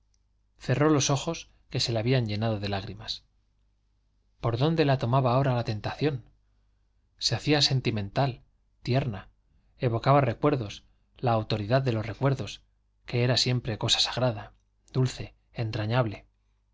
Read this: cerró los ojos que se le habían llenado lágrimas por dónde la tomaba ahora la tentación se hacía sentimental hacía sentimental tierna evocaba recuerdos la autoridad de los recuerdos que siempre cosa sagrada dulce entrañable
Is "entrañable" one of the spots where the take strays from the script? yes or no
no